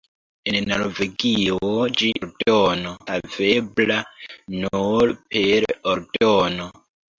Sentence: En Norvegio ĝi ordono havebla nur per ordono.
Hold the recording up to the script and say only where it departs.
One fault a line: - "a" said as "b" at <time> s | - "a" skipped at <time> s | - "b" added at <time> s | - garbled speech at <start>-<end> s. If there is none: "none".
none